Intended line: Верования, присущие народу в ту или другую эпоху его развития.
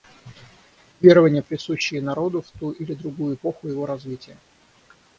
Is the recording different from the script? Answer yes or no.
no